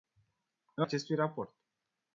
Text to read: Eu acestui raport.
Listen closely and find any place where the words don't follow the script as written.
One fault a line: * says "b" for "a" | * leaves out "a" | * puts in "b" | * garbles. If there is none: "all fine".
all fine